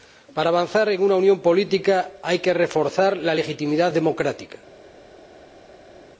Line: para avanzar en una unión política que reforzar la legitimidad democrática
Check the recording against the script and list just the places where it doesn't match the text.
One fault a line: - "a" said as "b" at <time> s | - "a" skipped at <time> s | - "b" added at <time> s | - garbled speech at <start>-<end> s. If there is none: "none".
- "hay" added at 2.2 s